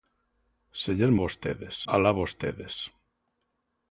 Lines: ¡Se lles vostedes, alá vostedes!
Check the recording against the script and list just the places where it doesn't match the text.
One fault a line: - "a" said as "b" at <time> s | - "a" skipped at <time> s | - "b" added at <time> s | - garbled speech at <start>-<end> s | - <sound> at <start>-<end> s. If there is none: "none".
none